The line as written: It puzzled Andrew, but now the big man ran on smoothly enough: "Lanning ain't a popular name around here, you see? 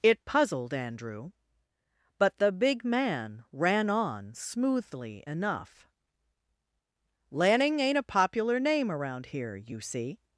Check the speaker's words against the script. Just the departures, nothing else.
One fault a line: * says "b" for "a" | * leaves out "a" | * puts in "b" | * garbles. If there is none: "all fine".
* leaves out "now"